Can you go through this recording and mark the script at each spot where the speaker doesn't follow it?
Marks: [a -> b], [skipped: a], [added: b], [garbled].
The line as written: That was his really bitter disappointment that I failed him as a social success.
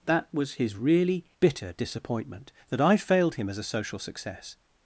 That was his really bitter disappointment that I failed him as a social success.